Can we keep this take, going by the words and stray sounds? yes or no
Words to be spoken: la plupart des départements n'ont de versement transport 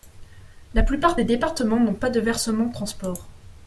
no